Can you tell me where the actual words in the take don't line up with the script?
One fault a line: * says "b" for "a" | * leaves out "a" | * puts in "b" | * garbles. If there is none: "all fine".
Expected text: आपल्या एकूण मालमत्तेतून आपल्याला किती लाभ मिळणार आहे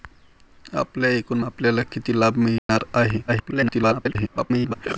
* leaves out "मालमत्तेतून"
* garbles